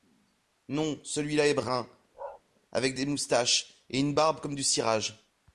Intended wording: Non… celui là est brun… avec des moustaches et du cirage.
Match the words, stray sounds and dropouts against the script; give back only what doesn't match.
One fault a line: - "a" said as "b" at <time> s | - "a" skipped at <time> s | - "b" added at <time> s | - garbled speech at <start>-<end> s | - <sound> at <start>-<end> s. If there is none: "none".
- bark at 2.1-2.4 s
- "une barbe comme" added at 4.0 s